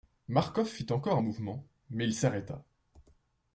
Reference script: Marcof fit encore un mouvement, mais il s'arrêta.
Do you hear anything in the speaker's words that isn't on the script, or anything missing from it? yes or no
no